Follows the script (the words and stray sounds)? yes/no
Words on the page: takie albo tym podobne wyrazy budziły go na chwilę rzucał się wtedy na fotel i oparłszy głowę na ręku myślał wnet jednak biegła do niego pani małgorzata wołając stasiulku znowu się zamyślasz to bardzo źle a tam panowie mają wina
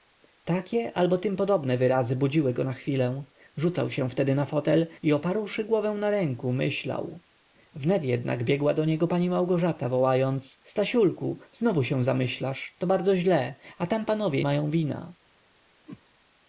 no